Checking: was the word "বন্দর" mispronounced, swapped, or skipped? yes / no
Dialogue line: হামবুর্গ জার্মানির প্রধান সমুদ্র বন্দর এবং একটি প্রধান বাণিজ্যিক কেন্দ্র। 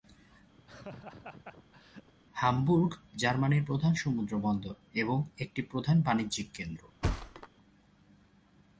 no